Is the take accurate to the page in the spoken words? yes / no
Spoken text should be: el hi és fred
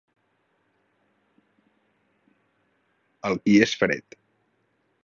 yes